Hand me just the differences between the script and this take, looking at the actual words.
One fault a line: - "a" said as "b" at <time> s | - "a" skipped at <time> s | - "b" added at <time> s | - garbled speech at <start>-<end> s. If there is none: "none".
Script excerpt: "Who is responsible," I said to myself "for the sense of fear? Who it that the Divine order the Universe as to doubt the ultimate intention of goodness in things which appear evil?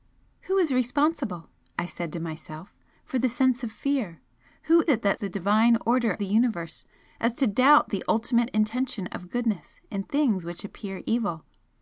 none